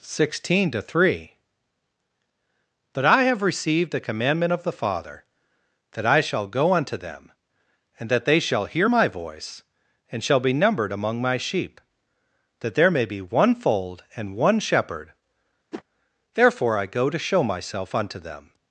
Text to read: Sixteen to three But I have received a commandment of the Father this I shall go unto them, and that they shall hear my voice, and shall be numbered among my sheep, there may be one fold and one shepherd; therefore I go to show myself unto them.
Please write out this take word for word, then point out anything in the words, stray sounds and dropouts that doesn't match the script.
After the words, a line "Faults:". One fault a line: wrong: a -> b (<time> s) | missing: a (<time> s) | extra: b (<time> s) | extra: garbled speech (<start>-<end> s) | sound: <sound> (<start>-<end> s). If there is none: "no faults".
Sixteen to three But I have received a commandment of the Father that I shall go unto them, and that they shall hear my voice, and shall be numbered among my sheep, that there may be one fold and one shepherd; therefore I go to show myself unto them.
Faults:
wrong: this -> that (5.9 s)
extra: that (12.6 s)
sound: whoosh (15.7-15.8 s)